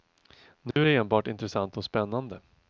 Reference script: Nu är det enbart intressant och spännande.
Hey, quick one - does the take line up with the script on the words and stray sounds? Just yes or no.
no